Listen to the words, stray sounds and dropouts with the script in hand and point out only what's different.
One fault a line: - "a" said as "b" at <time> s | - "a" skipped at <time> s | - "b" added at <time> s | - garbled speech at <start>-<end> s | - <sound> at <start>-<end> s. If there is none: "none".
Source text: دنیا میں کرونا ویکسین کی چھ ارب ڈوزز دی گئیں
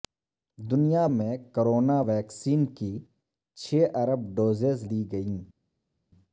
none